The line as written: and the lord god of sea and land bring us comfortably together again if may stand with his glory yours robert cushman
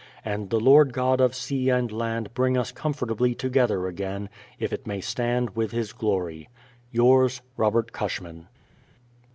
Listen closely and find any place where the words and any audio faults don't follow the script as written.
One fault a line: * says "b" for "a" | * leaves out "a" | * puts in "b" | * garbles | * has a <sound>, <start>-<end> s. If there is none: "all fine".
* puts in "it"